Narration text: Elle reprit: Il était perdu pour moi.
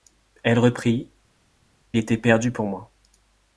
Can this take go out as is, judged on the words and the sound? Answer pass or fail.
fail